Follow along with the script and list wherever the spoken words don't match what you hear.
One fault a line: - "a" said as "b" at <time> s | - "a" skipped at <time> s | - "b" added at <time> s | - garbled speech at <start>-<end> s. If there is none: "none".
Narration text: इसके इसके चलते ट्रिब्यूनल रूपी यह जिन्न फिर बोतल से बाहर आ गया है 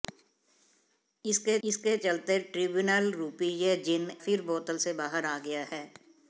none